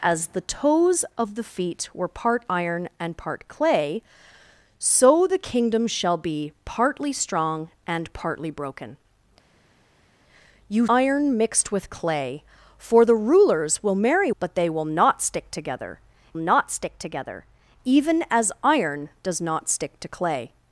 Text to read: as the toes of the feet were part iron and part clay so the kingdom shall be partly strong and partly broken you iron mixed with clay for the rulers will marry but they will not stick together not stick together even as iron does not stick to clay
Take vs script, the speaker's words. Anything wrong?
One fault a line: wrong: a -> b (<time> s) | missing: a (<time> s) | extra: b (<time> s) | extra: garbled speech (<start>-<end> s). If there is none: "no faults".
no faults